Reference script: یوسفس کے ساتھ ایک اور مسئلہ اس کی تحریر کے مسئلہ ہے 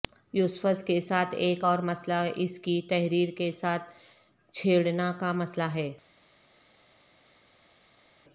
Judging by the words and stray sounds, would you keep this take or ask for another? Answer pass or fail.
fail